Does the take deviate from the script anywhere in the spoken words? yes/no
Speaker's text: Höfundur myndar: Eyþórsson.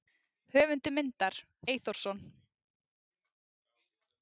no